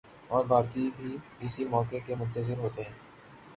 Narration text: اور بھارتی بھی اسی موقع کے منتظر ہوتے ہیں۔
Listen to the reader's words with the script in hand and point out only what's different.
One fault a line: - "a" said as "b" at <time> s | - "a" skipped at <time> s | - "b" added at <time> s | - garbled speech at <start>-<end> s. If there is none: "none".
none